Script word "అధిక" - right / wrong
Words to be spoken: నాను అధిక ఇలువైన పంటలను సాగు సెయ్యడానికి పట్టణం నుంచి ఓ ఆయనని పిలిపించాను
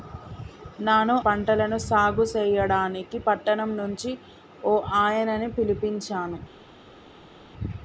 wrong